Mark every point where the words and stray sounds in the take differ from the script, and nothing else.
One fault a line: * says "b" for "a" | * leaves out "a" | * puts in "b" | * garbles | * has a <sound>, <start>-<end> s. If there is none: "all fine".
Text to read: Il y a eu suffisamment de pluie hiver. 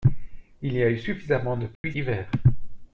* has a dropout, 1.8-1.8 s